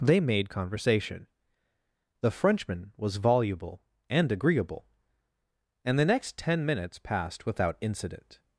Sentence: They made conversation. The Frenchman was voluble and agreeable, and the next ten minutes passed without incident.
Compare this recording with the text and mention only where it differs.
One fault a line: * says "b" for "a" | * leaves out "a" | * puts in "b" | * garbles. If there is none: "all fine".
all fine